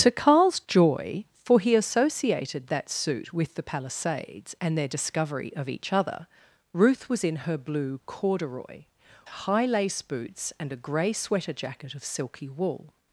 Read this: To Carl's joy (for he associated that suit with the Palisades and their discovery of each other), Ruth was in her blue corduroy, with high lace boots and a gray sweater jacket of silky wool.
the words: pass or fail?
fail